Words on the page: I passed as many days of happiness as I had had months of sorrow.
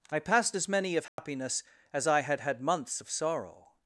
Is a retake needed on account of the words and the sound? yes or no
yes